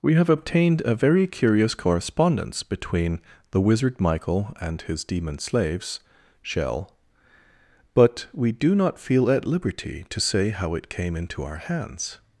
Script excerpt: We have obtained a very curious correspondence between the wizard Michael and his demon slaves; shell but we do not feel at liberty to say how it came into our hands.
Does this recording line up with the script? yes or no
yes